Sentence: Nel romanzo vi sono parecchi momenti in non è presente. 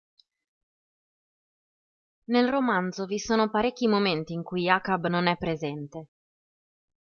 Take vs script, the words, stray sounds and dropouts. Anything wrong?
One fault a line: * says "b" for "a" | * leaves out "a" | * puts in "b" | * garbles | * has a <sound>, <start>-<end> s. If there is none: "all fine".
* puts in "cui Achab"